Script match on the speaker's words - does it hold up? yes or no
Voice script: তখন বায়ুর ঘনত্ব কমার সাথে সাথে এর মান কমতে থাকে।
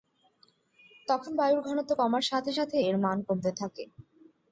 yes